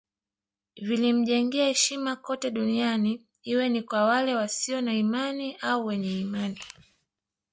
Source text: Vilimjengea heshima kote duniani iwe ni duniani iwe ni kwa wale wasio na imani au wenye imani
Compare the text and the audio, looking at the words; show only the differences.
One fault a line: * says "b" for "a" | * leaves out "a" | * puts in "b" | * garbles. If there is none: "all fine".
* leaves out "duniani iwe ni"